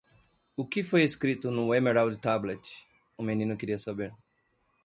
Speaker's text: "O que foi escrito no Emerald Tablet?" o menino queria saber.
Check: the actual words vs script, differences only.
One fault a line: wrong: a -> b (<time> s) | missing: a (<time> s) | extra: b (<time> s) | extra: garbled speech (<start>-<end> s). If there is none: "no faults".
no faults